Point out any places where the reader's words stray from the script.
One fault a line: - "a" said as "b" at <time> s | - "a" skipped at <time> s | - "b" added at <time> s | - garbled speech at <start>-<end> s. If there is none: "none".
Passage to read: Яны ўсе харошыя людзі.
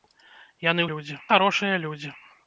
- "ўсе" said as "людзі" at 0.9 s